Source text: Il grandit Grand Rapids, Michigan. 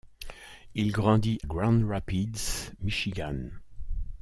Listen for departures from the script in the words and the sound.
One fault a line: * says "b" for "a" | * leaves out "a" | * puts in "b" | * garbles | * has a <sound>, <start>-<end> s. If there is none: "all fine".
all fine